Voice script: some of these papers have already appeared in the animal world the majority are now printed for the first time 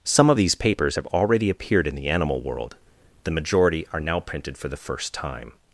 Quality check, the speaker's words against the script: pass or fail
pass